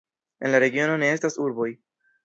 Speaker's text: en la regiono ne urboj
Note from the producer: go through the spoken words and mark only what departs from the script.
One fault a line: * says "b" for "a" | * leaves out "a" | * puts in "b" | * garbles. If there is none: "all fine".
* puts in "estas"